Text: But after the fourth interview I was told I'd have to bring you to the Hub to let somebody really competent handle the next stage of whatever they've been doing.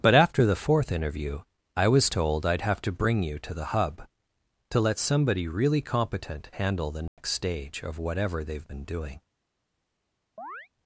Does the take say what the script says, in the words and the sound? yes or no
no